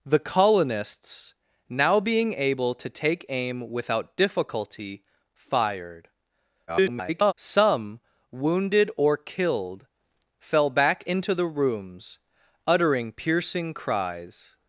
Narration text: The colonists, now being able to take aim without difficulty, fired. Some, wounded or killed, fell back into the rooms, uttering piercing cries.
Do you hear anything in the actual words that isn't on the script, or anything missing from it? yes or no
yes